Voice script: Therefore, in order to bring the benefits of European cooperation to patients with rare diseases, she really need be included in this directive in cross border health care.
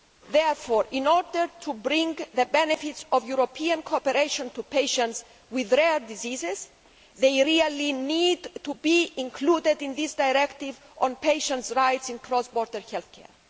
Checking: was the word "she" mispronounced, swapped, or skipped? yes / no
yes